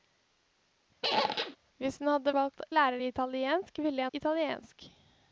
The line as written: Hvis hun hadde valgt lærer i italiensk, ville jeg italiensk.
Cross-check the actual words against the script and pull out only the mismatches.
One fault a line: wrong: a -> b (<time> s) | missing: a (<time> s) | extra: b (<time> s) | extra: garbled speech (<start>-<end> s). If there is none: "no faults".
no faults